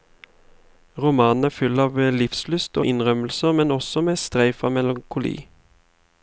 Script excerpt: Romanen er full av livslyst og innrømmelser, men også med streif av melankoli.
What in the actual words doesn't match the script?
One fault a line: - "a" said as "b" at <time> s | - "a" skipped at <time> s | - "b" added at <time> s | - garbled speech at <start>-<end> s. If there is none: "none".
none